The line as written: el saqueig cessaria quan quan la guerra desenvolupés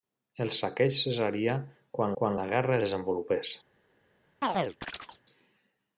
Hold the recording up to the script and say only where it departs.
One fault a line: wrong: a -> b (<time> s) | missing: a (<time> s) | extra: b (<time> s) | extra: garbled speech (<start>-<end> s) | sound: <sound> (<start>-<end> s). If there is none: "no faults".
sound: chirp (4.4-5.2 s)